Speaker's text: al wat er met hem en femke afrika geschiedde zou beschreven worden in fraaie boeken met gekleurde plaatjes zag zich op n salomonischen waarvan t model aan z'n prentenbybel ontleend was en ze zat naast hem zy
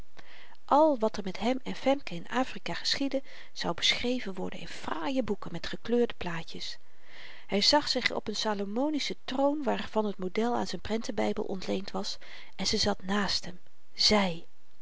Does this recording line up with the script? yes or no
no